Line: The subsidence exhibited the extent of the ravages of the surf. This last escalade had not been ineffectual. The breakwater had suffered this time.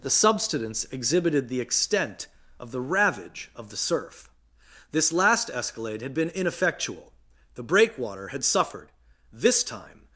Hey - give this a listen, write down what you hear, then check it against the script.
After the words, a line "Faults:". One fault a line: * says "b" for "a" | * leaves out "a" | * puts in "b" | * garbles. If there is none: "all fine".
The subsidence exhibited the extent of the ravage of the surf. This last escalade had been ineffectual. The breakwater had suffered this time.
Faults:
* says "ravage" for "ravages"
* leaves out "not"